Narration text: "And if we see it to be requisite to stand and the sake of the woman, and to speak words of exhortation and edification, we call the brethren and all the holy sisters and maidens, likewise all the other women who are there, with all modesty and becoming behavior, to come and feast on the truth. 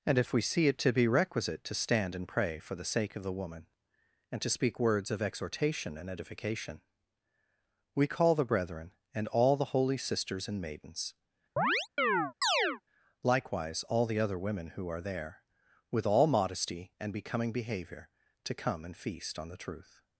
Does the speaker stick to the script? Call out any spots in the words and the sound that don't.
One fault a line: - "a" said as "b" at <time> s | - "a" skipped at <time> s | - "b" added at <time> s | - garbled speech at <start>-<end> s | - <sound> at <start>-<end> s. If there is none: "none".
- "pray for" added at 2.3 s
- chirp at 11.6-12.8 s